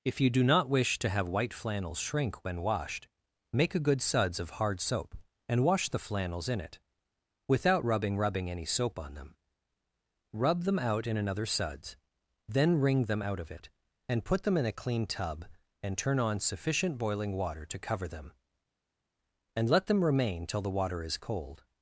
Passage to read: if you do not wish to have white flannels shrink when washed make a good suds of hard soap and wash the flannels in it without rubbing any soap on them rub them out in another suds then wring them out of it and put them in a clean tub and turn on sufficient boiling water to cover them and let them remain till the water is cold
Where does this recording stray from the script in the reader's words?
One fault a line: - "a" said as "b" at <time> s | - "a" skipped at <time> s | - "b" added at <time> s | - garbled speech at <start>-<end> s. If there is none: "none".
- "rubbing" added at 8.2 s